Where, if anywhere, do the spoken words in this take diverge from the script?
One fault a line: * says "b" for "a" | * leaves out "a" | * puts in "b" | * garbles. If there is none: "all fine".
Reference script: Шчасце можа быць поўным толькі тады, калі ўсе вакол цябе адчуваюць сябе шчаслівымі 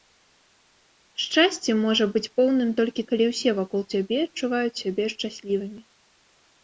* leaves out "тады"